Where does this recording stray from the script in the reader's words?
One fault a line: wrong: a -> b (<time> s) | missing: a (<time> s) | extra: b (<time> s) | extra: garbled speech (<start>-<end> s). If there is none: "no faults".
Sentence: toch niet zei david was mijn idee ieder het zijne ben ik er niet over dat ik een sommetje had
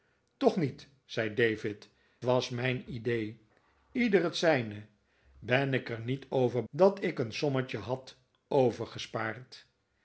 no faults